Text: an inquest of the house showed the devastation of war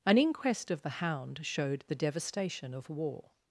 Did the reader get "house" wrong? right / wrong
wrong